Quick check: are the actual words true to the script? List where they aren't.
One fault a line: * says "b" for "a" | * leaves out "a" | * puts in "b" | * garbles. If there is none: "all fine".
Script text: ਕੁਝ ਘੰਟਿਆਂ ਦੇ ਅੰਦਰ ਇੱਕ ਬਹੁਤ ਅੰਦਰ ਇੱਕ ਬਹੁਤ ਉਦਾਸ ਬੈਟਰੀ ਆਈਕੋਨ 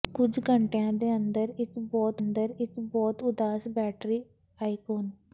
all fine